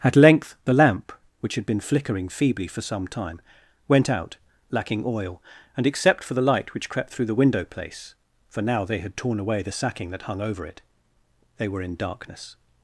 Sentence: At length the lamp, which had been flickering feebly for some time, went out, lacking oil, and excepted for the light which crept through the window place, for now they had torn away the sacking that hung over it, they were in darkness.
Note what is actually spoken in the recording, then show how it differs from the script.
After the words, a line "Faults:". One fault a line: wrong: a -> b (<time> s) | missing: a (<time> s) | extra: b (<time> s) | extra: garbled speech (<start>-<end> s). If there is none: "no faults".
At length the lamp, which had been flickering feebly for some time, went out, lacking oil, and except for the light which crept through the window place, for now they had torn away the sacking that hung over it, they were in darkness.
Faults:
wrong: excepted -> except (5.9 s)